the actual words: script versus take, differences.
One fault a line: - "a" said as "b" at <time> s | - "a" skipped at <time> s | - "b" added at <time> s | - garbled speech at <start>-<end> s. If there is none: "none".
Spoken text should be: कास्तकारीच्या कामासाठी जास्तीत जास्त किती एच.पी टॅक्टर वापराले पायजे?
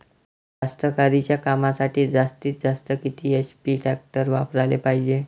none